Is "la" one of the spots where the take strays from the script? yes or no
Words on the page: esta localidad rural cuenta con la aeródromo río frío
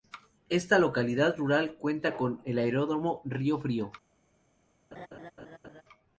yes